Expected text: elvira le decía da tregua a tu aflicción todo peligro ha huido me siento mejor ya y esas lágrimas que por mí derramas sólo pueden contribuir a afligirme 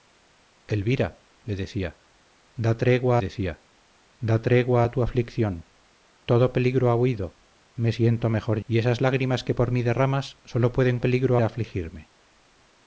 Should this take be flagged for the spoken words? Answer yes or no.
yes